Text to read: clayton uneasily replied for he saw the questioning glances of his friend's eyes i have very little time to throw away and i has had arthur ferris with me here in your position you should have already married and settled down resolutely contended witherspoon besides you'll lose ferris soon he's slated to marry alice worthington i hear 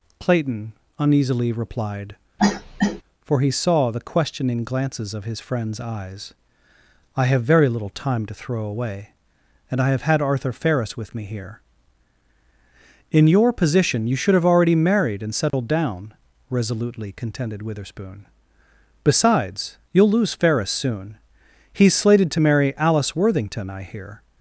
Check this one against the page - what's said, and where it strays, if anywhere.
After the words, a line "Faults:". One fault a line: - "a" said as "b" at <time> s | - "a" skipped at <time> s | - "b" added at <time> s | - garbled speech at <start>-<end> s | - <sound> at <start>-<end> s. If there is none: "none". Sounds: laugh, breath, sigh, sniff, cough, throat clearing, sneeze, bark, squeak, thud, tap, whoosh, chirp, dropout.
clayton uneasily replied for he saw the questioning glances of his friend's eyes i have very little time to throw away and i have had arthur ferris with me here in your position you should have already married and settled down resolutely contended witherspoon besides you'll lose ferris soon he's slated to marry alice worthington i hear
Faults:
- cough at 2.4-3.0 s
- "has" said as "have" at 9.9 s
- dropout at 15.5-15.5 s